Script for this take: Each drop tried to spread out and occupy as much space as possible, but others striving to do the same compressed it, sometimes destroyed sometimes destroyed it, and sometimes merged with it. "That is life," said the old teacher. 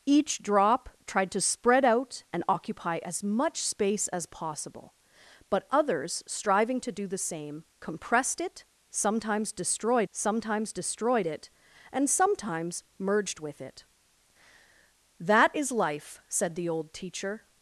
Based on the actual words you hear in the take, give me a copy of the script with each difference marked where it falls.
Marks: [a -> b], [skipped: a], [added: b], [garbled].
Each drop tried to spread out and occupy as much space as possible, but others striving to do the same compressed it, sometimes destroyed sometimes destroyed it, and sometimes merged with it. "That is life," said the old teacher.